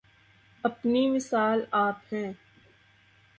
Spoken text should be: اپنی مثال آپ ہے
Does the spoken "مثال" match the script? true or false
true